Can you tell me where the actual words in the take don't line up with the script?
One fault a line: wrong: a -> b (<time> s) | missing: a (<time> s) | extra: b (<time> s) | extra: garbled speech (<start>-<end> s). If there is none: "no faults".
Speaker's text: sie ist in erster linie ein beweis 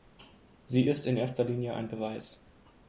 no faults